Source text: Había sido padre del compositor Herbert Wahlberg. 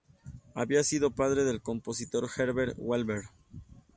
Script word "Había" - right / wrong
right